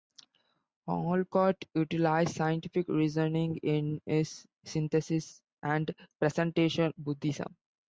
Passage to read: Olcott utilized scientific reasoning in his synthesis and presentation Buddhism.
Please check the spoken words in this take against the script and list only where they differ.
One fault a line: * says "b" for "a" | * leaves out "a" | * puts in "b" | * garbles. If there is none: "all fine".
all fine